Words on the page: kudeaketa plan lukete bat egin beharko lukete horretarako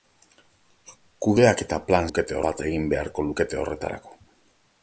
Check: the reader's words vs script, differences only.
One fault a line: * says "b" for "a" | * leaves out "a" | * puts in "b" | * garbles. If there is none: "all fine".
all fine